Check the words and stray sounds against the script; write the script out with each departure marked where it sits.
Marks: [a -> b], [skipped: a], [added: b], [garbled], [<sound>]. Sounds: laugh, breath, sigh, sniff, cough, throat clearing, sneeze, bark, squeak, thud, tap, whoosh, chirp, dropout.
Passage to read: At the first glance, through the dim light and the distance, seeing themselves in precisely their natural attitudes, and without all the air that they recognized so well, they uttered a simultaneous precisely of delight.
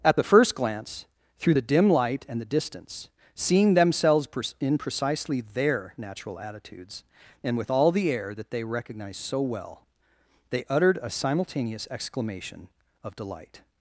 At the first glance, through the dim light and the distance, seeing themselves in precisely their natural attitudes, and [without -> with] all the air that they recognized so well, they uttered a simultaneous [precisely -> exclamation] of delight.